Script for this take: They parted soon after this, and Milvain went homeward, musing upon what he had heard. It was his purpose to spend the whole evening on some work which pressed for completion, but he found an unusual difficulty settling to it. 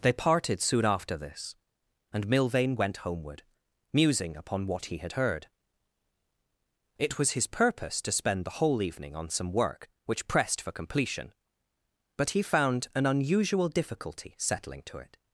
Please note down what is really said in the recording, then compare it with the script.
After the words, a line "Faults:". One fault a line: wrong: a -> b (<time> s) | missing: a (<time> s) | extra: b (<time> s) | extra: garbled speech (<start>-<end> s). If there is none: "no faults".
They parted soon after this, and Milvain went homeward, musing upon what he had heard. It was his purpose to spend the whole evening on some work which pressed for completion, but he found an unusual difficulty settling to it.
Faults:
no faults